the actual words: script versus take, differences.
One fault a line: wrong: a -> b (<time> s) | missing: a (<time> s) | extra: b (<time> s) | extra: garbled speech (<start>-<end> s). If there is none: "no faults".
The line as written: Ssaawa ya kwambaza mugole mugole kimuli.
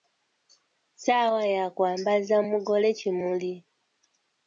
missing: mugole (2.9 s)